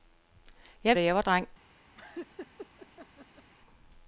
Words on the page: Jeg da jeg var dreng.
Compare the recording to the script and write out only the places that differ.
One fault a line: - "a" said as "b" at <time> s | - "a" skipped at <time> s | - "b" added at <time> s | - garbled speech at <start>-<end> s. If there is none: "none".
none